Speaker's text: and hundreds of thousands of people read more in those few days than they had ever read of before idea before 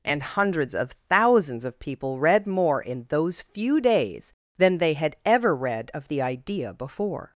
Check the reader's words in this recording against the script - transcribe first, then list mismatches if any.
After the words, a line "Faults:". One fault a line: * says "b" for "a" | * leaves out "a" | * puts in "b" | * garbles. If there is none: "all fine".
and hundreds of thousands of people read more in those few days than they had ever read of the idea before
Faults:
* says "the" for "before"